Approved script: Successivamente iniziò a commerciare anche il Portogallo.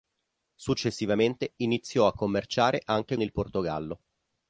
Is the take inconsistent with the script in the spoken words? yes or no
no